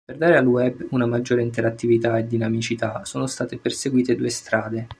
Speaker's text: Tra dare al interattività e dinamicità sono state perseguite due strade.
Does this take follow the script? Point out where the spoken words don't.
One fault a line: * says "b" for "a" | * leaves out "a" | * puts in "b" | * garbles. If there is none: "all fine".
* says "Per" for "Tra"
* puts in "web una maggiore"